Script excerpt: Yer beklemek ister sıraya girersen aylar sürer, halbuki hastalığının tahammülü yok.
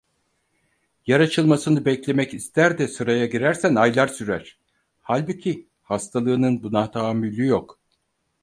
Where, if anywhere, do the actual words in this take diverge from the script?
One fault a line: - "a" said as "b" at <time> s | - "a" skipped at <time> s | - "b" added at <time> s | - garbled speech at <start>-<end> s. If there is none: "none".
- "açılmasını" added at 1.2 s
- "de" added at 2.8 s
- "buna" added at 6.6 s